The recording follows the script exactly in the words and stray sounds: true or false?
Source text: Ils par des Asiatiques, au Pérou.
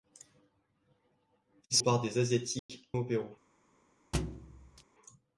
false